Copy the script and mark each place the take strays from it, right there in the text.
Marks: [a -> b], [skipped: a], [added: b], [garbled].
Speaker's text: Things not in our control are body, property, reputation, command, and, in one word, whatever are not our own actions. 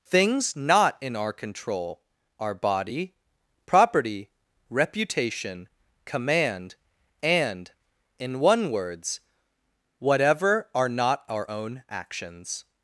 Things not in our control are body, property, reputation, command, and, in one [word, -> words] whatever are not our own actions.